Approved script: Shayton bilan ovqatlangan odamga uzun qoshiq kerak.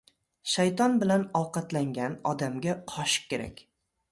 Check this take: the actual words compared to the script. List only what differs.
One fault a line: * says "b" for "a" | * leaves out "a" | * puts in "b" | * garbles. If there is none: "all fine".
* leaves out "uzun"